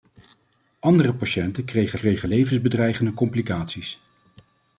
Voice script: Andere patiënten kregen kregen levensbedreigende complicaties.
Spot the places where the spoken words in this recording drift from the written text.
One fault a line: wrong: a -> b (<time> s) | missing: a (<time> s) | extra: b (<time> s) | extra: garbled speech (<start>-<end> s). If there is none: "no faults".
no faults